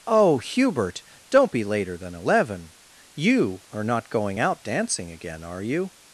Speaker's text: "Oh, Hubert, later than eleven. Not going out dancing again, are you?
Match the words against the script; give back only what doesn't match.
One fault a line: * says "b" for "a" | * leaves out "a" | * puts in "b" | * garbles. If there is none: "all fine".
* puts in "don't be"
* puts in "You are"